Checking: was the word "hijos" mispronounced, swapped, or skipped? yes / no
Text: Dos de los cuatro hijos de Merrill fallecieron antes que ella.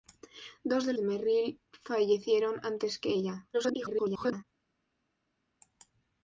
yes